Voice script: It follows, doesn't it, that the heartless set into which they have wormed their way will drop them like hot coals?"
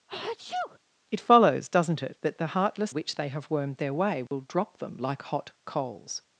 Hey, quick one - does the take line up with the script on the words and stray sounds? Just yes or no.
no